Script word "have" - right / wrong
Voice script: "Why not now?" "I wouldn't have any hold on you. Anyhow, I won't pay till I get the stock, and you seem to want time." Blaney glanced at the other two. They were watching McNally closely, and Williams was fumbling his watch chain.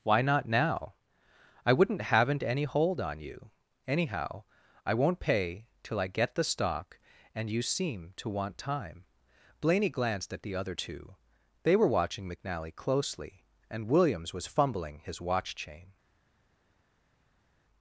wrong